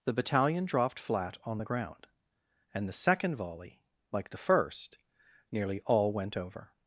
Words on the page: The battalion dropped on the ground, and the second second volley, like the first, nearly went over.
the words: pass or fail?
fail